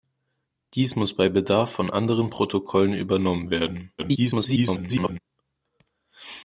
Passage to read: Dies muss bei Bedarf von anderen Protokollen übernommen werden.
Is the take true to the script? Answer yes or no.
no